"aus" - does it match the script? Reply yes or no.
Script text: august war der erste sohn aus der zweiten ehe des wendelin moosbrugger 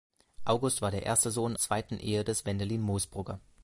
no